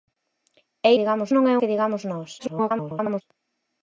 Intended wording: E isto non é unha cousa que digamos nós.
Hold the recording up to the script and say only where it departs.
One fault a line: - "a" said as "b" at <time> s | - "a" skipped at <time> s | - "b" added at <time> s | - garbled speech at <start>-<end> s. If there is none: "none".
- "isto" said as "digamos" at 1.0 s
- "unha cousa" skipped at 1.6 s
- garbled speech at 2.4-3.2 s